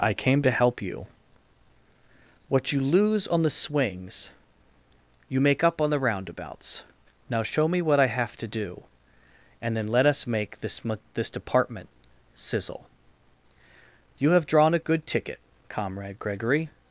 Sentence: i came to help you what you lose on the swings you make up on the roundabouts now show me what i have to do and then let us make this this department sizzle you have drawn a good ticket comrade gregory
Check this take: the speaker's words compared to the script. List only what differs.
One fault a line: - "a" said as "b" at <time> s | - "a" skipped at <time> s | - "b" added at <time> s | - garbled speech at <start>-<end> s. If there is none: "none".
none